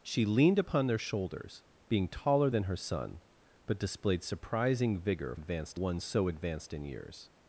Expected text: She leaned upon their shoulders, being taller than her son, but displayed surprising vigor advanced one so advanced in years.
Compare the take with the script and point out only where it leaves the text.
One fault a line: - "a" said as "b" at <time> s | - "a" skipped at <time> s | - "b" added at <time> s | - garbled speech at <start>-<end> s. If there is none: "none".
none